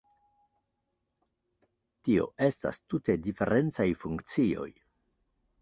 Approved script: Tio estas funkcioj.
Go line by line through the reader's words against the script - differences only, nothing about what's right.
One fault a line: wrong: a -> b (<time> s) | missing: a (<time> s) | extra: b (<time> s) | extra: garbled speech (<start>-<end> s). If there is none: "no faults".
extra: tute diferencaj (3.0 s)